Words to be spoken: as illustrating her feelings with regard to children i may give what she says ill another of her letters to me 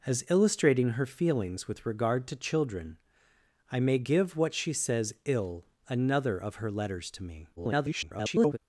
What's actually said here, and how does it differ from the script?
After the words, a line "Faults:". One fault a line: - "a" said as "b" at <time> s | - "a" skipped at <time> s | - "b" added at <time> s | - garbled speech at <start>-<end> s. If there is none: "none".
as illustrating her feelings with regard to children i may give what she says ill another of her letters to me [garbled]
Faults:
- garbled speech at 7.6-8.6 s